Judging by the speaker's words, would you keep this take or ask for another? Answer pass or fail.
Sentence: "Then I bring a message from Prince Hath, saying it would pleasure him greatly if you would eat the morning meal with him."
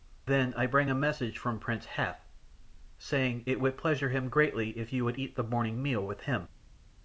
pass